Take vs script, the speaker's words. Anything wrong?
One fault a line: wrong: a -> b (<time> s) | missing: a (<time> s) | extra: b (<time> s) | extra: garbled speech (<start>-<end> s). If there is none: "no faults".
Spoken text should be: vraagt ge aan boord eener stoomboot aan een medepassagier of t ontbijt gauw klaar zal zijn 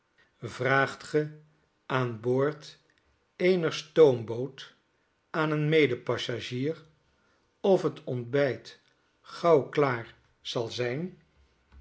no faults